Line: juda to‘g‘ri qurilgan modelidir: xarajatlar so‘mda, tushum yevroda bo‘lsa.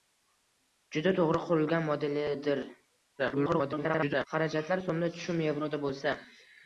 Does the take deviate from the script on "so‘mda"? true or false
false